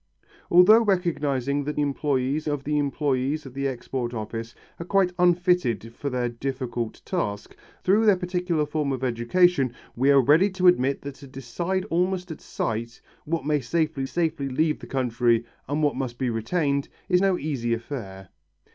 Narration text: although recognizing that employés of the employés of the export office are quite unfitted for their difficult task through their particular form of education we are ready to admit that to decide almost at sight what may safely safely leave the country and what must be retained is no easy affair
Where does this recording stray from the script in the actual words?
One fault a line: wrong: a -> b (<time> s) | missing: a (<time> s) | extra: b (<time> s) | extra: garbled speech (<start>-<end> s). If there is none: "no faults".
no faults